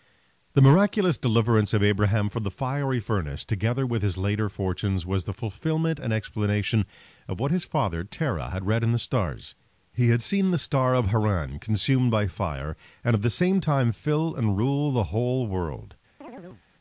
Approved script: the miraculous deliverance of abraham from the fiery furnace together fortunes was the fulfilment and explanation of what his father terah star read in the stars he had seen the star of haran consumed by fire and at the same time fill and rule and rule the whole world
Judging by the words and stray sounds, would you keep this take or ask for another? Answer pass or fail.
fail